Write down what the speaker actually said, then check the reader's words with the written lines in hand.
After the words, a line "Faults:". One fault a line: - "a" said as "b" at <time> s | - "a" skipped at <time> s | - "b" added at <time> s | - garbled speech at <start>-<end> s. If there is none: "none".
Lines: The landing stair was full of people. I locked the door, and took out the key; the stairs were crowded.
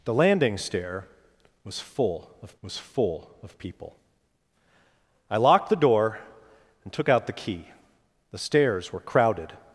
The landing stair was full of was full of people. I locked the door, and took out the key; the stairs were crowded.
Faults:
- "was full of" added at 2.6 s